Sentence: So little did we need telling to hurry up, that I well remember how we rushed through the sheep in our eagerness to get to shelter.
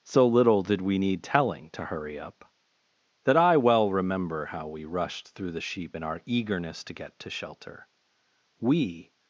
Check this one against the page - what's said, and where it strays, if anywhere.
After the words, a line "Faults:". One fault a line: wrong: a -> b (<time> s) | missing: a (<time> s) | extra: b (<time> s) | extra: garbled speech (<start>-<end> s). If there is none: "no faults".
So little did we need telling to hurry up, that I well remember how we rushed through the sheep in our eagerness to get to shelter. We
Faults:
extra: We (8.6 s)